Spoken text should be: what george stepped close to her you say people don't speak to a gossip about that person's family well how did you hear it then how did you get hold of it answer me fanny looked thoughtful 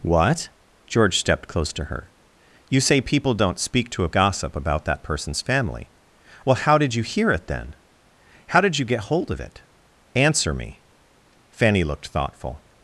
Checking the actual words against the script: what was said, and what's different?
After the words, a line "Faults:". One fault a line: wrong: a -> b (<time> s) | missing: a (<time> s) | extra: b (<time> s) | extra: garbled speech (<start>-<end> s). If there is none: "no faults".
what george stepped close to her you say people don't speak to a gossip about that person's family well how did you hear it then how did you get hold of it answer me fanny looked thoughtful
Faults:
no faults